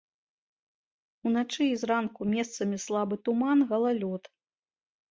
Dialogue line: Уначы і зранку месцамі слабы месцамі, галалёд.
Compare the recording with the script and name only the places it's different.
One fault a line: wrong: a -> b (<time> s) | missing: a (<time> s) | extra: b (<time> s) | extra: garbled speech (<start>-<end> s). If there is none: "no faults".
wrong: месцамі -> туман (3.3 s)